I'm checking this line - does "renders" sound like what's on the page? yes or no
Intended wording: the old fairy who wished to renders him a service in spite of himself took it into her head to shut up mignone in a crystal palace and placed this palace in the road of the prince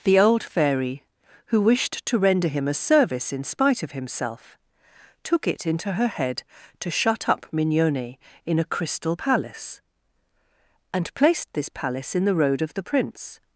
no